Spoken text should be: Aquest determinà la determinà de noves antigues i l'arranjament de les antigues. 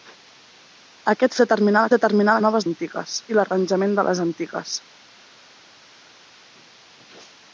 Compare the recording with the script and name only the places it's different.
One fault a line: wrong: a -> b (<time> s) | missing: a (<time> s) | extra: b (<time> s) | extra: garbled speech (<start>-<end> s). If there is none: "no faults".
no faults